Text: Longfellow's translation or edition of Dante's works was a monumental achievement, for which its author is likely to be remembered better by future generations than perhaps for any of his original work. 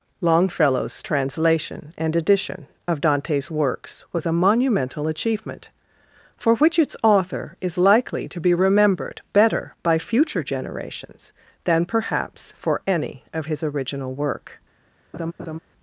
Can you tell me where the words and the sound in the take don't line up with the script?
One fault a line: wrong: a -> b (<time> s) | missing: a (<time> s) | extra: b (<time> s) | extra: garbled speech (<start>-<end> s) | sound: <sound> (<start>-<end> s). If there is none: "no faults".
wrong: or -> and (1.9 s)
sound: laugh (15.1-15.6 s)